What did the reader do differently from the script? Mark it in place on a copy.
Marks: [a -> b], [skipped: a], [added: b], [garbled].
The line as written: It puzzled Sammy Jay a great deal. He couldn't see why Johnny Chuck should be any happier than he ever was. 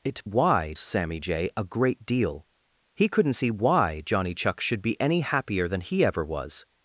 It [puzzled -> why] Sammy Jay a great deal. He couldn't see why Johnny Chuck should be any happier than he ever was.